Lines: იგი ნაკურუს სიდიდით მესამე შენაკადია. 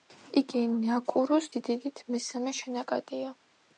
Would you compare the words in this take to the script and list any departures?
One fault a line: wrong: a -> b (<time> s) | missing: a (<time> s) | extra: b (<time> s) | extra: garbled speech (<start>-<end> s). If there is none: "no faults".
no faults